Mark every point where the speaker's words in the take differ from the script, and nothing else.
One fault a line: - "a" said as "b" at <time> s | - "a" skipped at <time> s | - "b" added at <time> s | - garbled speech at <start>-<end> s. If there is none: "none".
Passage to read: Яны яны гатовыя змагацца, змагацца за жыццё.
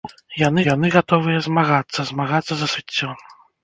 none